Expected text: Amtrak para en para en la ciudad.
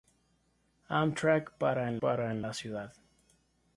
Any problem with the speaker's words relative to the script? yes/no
no